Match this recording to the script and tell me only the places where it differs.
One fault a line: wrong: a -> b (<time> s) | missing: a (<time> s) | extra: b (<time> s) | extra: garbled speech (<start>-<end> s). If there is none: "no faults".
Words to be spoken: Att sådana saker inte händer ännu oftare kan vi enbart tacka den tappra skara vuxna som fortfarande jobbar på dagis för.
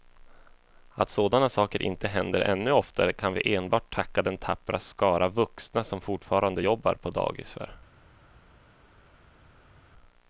no faults